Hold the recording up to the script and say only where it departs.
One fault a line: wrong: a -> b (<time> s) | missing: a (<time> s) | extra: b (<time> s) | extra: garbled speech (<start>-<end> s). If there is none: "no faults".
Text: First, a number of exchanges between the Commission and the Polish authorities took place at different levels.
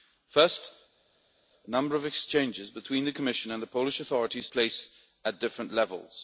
missing: took (4.5 s)